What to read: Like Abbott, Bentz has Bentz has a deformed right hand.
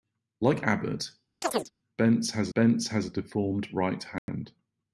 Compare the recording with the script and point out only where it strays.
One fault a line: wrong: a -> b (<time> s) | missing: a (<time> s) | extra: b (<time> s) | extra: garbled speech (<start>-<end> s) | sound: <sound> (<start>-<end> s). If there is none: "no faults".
sound: chirp (1.4-1.7 s)
sound: dropout (4.2-4.3 s)